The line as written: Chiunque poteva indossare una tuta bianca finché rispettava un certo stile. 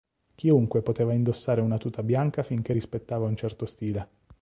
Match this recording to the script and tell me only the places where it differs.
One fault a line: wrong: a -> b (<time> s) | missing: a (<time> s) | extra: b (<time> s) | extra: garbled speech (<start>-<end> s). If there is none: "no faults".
no faults